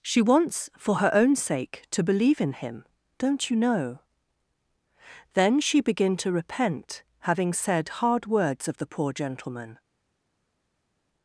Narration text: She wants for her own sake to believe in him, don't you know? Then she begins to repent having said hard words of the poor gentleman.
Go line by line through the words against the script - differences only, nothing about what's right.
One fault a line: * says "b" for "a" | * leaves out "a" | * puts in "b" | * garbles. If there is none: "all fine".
* says "begin" for "begins"